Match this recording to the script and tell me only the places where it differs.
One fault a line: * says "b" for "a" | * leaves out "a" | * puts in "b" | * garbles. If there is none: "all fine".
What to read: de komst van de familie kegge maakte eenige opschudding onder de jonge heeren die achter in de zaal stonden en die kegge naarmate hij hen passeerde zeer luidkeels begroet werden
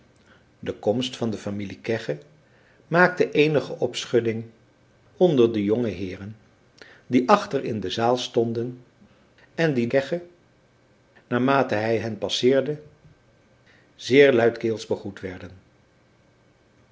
all fine